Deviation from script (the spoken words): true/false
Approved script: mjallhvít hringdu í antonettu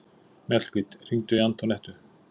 false